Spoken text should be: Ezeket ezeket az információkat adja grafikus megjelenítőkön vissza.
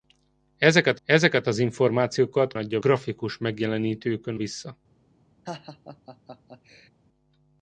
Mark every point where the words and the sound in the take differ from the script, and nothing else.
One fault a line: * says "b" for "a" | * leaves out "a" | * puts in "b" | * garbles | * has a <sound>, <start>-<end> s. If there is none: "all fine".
* has a laugh, 5.5-6.9 s